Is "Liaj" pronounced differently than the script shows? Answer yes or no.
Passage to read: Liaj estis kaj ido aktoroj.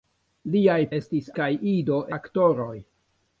no